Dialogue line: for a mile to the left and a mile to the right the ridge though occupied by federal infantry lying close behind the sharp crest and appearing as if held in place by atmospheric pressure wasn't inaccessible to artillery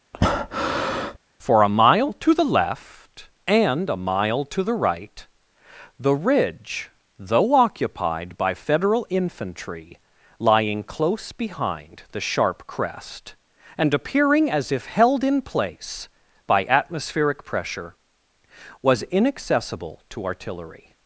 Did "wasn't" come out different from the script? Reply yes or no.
yes